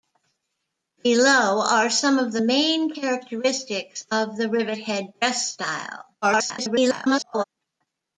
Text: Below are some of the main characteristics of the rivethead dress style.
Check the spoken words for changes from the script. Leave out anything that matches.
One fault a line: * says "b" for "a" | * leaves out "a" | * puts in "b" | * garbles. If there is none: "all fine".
* garbles